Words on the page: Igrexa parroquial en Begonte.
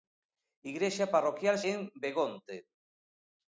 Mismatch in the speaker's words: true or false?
false